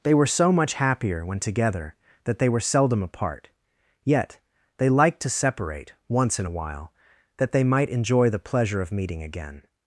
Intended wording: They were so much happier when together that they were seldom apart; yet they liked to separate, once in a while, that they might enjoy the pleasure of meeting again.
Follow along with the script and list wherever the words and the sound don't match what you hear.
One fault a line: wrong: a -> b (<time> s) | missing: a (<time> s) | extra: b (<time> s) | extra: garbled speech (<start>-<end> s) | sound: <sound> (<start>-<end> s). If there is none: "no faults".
no faults